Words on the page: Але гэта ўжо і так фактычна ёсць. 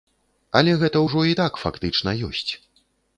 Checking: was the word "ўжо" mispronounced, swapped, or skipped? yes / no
no